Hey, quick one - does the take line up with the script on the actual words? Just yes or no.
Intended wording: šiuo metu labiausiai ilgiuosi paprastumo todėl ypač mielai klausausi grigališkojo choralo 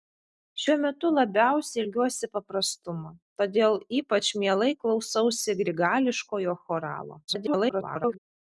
no